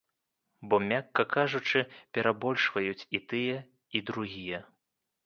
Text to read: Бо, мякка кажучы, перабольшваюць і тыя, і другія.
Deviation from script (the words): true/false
false